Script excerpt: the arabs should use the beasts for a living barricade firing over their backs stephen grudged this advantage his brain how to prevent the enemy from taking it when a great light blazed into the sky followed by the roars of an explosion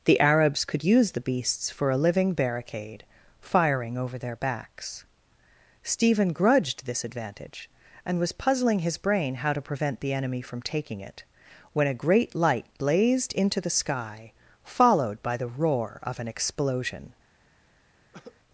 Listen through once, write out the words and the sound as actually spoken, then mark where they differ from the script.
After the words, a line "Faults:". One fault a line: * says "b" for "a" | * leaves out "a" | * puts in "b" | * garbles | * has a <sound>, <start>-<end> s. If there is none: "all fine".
the arabs could use the beasts for a living barricade firing over their backs stephen grudged this advantage and was puzzling his brain how to prevent the enemy from taking it when a great light blazed into the sky followed by the roar of an explosion
Faults:
* says "could" for "should"
* puts in "and was puzzling"
* says "roar" for "roars"
* has a cough, 18.1-18.4 s